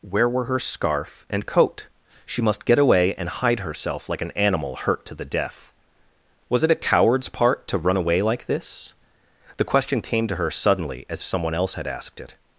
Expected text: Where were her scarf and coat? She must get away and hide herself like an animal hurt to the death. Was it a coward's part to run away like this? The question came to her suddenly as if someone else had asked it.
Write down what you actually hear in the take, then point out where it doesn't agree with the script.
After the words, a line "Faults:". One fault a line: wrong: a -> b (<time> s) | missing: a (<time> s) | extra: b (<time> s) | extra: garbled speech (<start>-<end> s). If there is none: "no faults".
Where were her scarf and coat? She must get away and hide herself like an animal hurt to the death. Was it a coward's part to run away like this? The question came to her suddenly as someone else had asked it.
Faults:
missing: if (11.2 s)